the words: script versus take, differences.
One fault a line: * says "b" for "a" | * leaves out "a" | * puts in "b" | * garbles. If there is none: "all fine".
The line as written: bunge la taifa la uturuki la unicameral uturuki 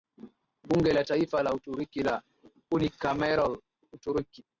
all fine